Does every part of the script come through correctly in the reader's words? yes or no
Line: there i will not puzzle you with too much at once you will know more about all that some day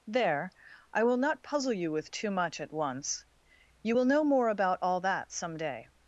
yes